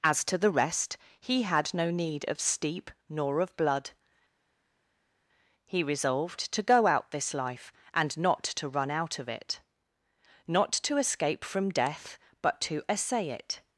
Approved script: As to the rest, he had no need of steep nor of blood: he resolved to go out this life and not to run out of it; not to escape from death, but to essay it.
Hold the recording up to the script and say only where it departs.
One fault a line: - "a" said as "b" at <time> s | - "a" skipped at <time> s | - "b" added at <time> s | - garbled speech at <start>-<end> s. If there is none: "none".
none